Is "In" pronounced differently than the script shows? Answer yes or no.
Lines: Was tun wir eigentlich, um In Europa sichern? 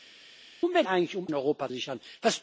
no